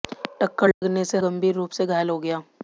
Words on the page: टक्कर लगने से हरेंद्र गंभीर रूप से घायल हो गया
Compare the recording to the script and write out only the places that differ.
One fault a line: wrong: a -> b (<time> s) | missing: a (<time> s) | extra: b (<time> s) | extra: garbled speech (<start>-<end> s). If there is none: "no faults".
missing: हरेंद्र (1.2 s)